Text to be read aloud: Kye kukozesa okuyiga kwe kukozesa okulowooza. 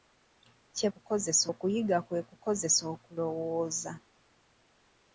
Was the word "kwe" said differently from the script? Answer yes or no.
no